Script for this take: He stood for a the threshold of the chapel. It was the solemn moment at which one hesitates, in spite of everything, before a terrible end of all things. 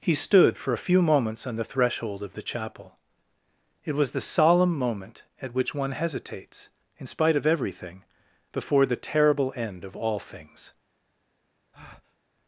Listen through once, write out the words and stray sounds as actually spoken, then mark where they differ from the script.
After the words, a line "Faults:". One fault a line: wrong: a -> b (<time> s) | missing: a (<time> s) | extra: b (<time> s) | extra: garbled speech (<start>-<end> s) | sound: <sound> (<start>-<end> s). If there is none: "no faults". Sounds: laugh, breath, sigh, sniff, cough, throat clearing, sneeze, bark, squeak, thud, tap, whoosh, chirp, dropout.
He stood for a few moments on the threshold of the chapel. It was the solemn moment at which one hesitates, in spite of everything, before the terrible end of all things.
Faults:
extra: few moments on (0.9 s)
wrong: a -> the (8.8 s)
sound: breath (11.7-12.2 s)